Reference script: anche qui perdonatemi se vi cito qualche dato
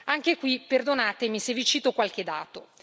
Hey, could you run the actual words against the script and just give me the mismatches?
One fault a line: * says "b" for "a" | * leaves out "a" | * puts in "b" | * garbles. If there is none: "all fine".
all fine